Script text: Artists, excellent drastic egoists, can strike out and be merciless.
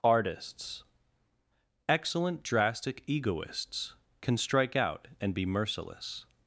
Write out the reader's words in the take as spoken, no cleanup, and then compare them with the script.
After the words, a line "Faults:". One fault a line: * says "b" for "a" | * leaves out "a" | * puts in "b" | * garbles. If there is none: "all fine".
Artists, excellent drastic egoists, can strike out and be merciless.
Faults:
all fine